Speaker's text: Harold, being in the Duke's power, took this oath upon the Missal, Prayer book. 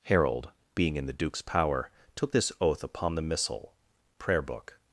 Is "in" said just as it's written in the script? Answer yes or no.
yes